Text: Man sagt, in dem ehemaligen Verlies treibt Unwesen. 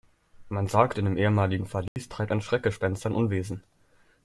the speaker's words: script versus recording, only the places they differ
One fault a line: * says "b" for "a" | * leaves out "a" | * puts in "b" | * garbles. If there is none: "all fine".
* puts in "ein Schreckgespenst sein"